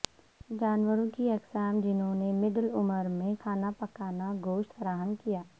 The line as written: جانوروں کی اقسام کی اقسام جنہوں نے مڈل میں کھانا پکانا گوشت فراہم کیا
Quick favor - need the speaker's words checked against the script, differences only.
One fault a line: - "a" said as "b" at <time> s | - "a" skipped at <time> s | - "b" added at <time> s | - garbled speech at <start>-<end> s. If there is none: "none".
- "کی اقسام" skipped at 1.8 s
- "عمر" added at 2.7 s